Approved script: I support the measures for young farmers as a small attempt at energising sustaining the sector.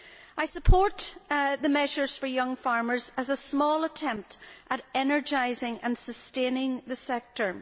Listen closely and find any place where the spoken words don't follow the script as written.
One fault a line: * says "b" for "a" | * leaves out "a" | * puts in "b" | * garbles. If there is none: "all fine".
* puts in "and"